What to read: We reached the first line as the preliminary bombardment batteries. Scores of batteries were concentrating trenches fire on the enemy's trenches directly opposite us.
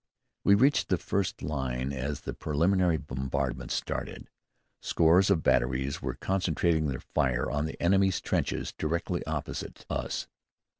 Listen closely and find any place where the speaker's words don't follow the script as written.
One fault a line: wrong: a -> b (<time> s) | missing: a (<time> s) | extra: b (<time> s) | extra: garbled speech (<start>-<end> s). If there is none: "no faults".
wrong: batteries -> started (3.7 s)
wrong: trenches -> their (6.9 s)